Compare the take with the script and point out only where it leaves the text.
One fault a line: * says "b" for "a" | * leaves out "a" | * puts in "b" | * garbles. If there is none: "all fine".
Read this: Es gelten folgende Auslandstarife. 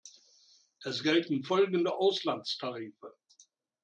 all fine